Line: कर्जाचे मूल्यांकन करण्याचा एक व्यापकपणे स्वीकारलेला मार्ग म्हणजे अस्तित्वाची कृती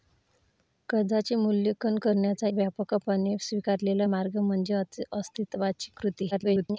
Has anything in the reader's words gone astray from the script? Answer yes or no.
yes